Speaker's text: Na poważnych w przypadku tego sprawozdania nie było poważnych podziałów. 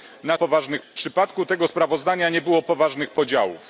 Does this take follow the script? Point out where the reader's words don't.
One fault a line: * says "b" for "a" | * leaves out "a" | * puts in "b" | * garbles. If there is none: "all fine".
all fine